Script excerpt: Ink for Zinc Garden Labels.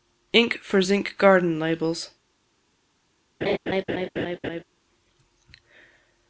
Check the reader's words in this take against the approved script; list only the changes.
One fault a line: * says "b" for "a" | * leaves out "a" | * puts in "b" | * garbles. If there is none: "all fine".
all fine